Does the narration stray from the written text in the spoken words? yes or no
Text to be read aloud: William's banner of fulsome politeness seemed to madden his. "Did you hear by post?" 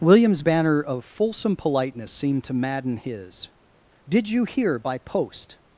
no